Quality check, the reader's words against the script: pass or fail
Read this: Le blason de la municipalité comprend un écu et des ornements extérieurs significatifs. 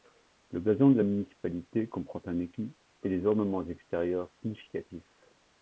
pass